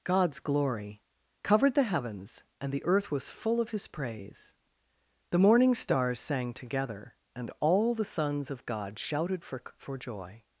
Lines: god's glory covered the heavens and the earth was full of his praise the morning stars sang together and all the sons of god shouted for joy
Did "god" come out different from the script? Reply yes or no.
no